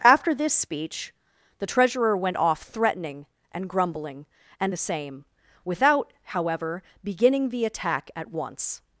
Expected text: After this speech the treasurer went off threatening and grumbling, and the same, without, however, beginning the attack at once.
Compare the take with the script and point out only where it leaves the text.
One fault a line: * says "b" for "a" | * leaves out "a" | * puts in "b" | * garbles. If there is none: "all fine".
all fine